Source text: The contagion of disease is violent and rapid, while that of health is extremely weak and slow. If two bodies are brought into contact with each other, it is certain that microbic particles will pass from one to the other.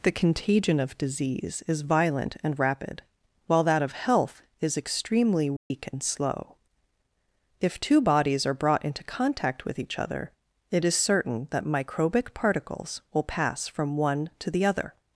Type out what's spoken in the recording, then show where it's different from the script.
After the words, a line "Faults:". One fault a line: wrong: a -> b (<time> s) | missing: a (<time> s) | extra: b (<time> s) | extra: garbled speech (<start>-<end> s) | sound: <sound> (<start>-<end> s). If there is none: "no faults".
The contagion of disease is violent and rapid, while that of health is extremely weak and slow. If two bodies are brought into contact with each other, it is certain that microbic particles will pass from one to the other.
Faults:
sound: dropout (5.6-5.7 s)